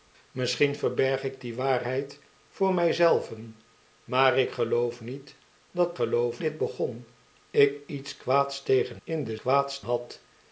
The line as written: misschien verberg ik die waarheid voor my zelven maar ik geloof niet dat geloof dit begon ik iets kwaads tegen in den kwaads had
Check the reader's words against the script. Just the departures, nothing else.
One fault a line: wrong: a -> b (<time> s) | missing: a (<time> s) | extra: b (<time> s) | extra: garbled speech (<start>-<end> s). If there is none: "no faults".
no faults